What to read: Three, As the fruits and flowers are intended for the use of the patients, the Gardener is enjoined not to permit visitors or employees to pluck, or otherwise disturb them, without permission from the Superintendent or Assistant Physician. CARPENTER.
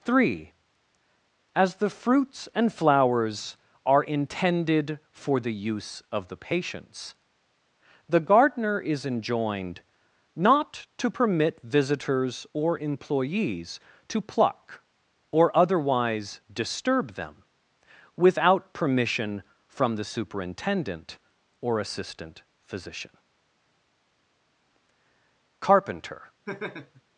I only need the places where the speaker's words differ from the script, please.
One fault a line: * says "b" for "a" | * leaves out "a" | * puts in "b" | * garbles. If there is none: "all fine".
all fine